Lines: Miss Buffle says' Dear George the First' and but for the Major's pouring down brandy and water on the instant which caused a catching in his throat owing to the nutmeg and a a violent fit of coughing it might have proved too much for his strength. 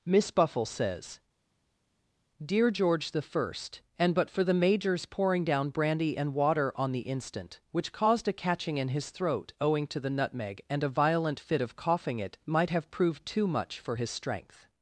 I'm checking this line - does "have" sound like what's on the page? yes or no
yes